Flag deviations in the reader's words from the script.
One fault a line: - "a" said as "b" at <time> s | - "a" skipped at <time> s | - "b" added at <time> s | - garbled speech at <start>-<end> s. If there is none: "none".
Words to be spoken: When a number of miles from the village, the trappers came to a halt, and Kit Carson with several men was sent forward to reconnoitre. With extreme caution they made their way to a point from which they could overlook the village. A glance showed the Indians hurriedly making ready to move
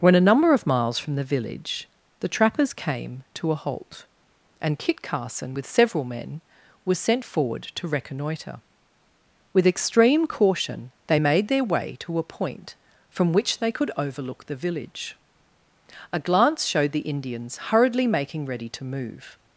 none